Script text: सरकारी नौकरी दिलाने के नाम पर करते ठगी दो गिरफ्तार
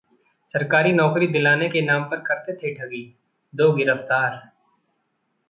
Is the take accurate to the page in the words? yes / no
no